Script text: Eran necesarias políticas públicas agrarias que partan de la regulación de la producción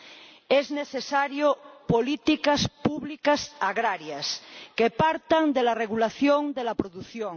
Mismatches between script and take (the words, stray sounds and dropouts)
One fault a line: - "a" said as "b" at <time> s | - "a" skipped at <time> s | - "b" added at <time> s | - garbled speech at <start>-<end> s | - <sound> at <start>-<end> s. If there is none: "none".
- "Eran" said as "Son" at 0.5 s